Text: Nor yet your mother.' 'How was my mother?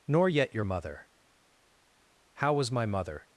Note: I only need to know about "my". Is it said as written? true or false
true